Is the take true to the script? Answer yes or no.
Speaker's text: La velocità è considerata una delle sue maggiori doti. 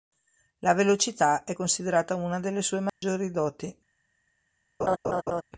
yes